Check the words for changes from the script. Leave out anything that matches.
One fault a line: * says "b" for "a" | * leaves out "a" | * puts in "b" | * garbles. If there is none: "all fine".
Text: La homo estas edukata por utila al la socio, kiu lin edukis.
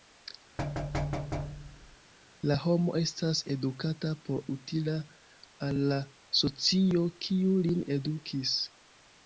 all fine